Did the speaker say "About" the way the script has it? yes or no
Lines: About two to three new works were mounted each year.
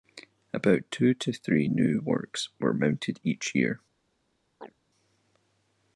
yes